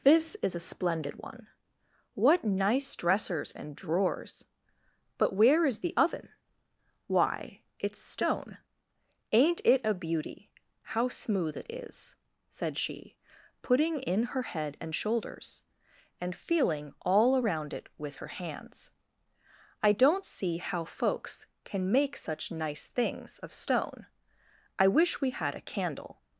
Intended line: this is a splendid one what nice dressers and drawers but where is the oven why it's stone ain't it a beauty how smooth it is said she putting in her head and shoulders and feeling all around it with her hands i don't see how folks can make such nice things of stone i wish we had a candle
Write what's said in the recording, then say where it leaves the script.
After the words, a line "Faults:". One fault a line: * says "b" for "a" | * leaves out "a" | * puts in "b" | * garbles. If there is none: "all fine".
this is a splendid one what nice dressers and drawers but where is the oven why it's stone ain't it a beauty how smooth it is said she putting in her head and shoulders and feeling all around it with her hands i don't see how folks can make such nice things of stone i wish we had a candle
Faults:
all fine